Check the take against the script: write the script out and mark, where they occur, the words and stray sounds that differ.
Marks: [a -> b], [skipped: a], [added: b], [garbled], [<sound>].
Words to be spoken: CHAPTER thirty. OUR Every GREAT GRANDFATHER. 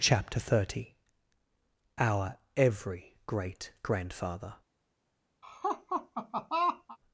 CHAPTER thirty. OUR Every GREAT GRANDFATHER. [laugh]